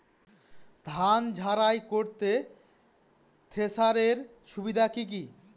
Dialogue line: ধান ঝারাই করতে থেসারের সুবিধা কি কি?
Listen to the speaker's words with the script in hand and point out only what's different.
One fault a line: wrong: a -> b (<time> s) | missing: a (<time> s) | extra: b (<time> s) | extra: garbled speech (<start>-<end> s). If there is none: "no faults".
no faults